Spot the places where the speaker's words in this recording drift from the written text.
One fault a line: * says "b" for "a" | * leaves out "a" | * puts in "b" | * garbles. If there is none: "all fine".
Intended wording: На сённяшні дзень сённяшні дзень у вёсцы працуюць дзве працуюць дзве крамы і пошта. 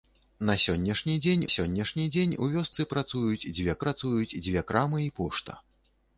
all fine